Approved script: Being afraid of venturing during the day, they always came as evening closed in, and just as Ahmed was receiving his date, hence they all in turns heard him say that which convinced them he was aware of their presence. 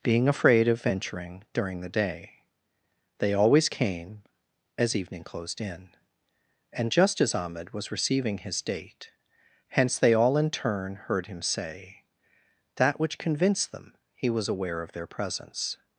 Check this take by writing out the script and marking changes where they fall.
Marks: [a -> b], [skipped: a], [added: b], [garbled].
Being afraid of venturing during the day, they always came as evening closed in, and just as Ahmed was receiving his date, hence they all in [turns -> turn] heard him say that which convinced them he was aware of their presence.